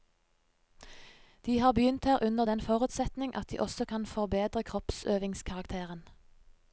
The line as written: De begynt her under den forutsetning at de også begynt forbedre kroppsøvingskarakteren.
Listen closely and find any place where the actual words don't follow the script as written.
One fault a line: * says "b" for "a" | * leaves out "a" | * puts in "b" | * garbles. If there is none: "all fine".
* puts in "har"
* says "kan" for "begynt"